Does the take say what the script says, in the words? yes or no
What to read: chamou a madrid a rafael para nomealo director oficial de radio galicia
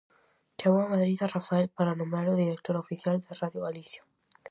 yes